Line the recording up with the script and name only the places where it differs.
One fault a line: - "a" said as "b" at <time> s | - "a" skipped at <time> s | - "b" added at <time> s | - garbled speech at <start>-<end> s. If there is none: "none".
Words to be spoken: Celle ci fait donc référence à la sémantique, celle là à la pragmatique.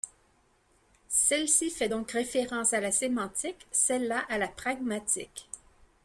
none